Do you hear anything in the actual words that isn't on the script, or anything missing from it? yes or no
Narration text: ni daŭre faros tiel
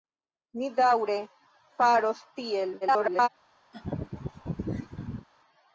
yes